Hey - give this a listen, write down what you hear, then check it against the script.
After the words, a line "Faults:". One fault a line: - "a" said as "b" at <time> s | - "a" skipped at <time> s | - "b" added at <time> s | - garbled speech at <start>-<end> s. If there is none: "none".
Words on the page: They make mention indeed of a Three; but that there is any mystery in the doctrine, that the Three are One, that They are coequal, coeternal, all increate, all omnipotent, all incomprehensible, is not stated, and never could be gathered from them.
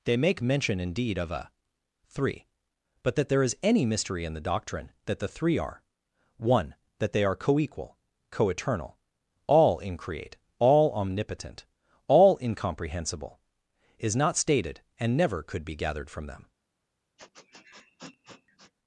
They make mention indeed of a Three; but that there is any mystery in the doctrine, that the Three are One, that They are coequal, coeternal, all increate, all omnipotent, all incomprehensible, is not stated, and never could be gathered from them.
Faults:
none